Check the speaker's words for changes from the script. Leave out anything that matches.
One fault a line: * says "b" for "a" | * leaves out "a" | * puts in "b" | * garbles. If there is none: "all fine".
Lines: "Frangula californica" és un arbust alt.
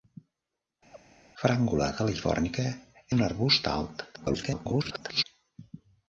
* leaves out "és"
* garbles